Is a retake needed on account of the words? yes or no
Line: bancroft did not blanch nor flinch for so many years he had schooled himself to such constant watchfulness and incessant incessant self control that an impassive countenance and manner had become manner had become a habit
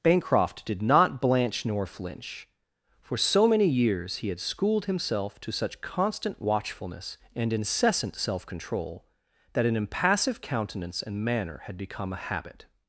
yes